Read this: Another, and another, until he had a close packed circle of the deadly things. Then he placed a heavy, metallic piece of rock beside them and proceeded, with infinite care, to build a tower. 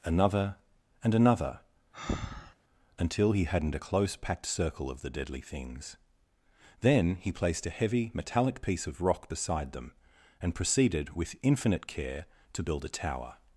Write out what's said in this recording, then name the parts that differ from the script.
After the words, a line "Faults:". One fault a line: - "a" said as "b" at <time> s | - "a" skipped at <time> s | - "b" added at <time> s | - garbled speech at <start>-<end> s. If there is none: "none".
Another, and another, until he hadn't a close packed circle of the deadly things. Then he placed a heavy, metallic piece of rock beside them and proceeded, with infinite care, to build a tower.
Faults:
- "had" said as "hadn't" at 3.4 s